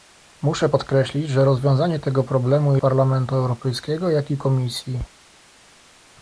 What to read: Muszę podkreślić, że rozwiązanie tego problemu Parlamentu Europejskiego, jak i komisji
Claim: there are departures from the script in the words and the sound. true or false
false